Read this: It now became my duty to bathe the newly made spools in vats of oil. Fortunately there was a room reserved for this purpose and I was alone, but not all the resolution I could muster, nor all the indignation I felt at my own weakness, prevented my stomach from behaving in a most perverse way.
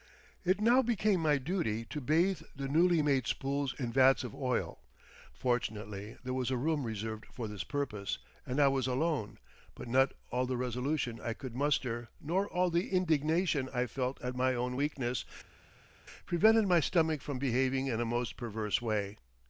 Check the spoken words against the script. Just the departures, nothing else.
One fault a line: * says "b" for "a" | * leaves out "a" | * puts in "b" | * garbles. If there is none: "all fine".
all fine